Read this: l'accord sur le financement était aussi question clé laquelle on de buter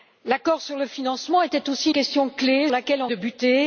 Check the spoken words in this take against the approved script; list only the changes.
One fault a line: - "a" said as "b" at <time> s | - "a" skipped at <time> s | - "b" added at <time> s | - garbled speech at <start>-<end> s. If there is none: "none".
none